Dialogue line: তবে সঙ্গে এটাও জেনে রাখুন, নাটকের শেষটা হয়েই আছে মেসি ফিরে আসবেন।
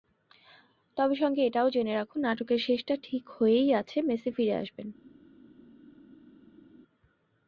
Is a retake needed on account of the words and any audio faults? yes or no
yes